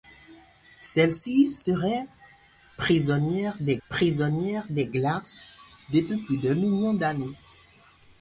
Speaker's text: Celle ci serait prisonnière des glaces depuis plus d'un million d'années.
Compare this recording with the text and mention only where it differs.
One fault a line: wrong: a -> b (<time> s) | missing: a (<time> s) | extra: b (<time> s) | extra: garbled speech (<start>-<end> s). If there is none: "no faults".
extra: prisonnière des (3.9 s)